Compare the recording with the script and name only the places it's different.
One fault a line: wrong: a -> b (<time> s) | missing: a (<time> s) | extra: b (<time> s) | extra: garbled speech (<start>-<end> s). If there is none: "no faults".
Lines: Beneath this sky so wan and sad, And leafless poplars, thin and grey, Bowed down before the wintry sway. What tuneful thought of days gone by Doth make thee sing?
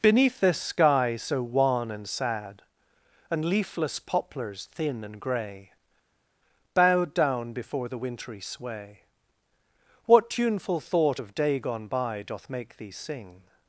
wrong: days -> day (11.3 s)